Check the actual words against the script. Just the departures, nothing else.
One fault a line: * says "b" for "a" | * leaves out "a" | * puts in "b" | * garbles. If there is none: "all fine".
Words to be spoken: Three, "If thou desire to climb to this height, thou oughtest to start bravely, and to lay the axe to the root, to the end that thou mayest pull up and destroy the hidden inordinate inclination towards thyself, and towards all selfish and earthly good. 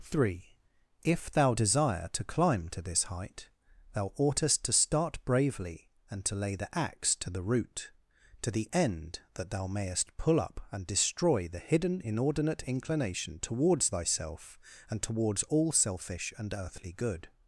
all fine